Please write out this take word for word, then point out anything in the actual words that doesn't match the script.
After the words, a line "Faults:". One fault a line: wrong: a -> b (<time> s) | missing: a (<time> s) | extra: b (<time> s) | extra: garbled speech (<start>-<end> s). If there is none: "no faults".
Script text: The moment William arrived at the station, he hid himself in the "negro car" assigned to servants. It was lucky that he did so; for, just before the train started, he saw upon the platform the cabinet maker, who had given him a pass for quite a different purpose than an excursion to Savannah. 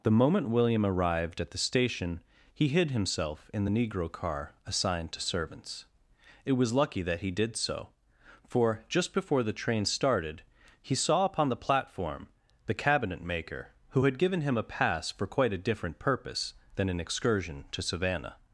The moment William arrived at the station, he hid himself in the "negro car" assigned to servants. It was lucky that he did so; for, just before the train started, he saw upon the platform the cabinet maker, who had given him a pass for quite a different purpose than an excursion to Savannah.
Faults:
no faults